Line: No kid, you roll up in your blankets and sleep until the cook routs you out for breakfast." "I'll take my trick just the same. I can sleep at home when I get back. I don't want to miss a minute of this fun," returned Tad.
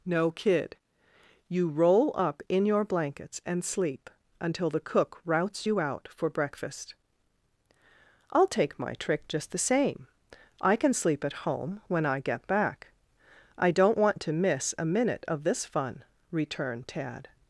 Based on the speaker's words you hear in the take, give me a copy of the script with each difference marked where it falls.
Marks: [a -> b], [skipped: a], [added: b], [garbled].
No kid, you roll up in your blankets and sleep until the cook routs you out for breakfast." "I'll take my trick just the same. I can sleep at home when I get back. I don't want to miss a minute of this fun," returned Tad.